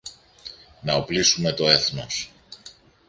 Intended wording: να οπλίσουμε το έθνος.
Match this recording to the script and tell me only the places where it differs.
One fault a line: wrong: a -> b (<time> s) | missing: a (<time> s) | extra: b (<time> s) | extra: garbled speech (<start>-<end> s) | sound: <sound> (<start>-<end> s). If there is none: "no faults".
no faults